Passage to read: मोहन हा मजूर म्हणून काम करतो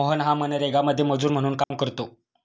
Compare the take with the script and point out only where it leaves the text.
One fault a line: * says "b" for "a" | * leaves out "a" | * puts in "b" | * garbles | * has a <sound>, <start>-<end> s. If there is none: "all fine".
* puts in "मनरेगामध्ये"
* has a dropout, 1.6-1.7 s